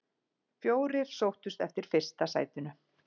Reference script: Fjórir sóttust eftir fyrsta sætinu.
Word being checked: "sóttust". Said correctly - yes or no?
yes